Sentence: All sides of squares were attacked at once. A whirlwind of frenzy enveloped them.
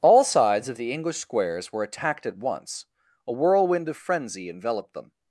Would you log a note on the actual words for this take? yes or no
yes